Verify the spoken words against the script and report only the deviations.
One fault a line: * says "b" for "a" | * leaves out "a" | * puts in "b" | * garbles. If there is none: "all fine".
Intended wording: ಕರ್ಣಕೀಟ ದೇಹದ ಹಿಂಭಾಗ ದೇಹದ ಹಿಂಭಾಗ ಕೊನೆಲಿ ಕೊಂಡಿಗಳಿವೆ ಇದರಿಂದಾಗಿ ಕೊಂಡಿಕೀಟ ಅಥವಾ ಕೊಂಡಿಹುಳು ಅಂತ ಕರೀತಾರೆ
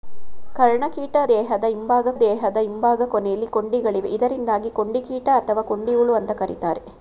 all fine